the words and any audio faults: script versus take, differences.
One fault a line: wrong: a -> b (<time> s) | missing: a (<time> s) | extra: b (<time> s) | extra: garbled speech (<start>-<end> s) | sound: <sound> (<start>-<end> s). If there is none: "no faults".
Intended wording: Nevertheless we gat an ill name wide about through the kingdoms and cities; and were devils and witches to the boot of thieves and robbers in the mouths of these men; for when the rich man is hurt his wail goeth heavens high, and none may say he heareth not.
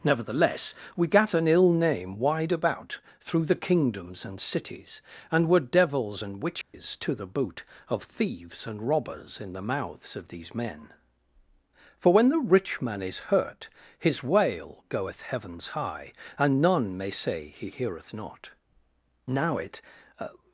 sound: dropout (6.6-6.7 s)
extra: Now it (19.3 s)